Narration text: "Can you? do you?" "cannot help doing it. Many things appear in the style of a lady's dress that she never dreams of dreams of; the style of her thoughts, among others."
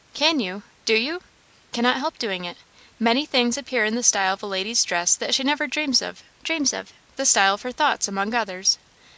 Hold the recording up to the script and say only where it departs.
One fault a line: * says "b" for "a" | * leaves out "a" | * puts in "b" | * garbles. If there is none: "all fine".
all fine